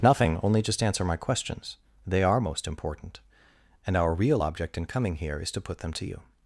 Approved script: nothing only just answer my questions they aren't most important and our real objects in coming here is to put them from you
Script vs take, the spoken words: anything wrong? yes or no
yes